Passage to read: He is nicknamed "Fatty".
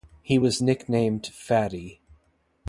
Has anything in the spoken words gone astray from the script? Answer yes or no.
yes